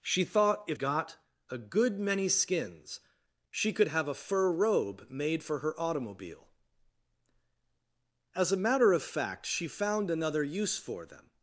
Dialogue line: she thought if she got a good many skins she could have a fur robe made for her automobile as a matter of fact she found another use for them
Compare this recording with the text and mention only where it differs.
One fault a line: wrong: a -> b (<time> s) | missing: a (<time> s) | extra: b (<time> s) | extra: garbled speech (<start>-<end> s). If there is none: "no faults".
missing: she (0.8 s)